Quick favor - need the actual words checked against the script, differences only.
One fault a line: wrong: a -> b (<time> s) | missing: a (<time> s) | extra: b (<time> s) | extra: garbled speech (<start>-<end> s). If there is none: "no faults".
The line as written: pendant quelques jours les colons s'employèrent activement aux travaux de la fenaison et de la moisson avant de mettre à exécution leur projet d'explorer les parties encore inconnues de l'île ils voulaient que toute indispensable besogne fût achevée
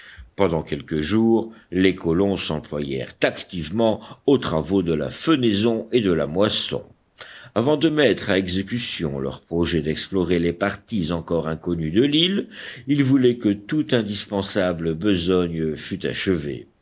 no faults